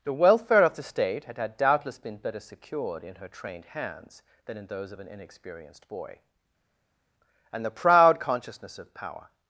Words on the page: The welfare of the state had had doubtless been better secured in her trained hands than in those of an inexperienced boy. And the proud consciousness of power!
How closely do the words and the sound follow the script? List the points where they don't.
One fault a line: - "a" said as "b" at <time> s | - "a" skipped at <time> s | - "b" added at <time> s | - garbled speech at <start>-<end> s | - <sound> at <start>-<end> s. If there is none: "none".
none